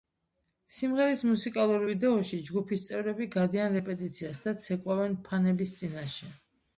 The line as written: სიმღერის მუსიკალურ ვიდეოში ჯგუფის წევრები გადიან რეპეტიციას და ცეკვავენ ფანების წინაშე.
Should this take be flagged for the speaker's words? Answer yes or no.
no